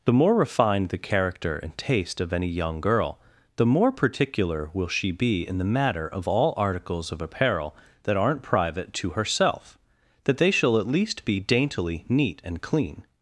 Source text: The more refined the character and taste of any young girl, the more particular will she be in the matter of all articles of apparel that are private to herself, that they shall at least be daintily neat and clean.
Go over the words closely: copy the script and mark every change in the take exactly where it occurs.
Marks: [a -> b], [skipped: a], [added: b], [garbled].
The more refined the character and taste of any young girl, the more particular will she be in the matter of all articles of apparel that [are -> aren't] private to herself, that they shall at least be daintily neat and clean.